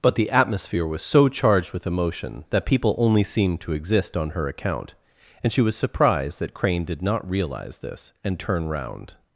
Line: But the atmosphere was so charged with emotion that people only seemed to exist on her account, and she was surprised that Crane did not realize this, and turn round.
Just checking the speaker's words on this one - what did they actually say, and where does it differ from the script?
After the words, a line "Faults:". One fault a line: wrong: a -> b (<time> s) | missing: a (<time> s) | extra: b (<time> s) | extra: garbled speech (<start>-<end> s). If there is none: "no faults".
But the atmosphere was so charged with emotion that people only seemed to exist on her account, and she was surprised that Crane did not realize this, and turn round.
Faults:
no faults